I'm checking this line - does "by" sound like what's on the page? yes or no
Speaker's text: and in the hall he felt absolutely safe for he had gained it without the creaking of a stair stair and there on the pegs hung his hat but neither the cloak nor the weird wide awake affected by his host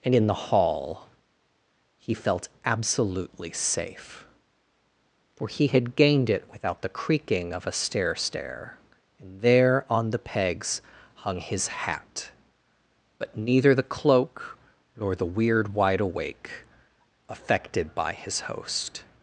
yes